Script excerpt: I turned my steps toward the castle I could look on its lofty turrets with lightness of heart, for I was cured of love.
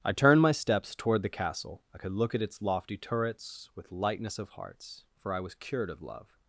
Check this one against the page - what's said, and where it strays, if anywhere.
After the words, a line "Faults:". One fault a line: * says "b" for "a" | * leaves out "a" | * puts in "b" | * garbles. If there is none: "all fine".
I turned my steps toward the castle I could look at its lofty turrets with lightness of hearts, for I was cured of love.
Faults:
* says "at" for "on"
* says "hearts" for "heart"